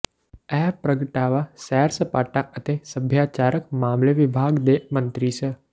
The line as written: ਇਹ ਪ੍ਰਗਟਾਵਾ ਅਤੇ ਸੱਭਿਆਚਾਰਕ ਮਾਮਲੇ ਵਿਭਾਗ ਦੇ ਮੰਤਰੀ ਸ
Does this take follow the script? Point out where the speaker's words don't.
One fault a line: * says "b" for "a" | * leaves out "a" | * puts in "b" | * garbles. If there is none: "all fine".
* puts in "ਸੈਰ ਸਪਾਟਾ"